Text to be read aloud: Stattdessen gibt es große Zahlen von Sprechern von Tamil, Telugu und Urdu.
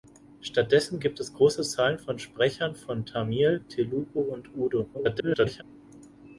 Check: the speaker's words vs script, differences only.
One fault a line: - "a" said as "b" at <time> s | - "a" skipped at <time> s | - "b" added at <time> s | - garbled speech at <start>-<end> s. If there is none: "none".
- garbled speech at 4.9-5.6 s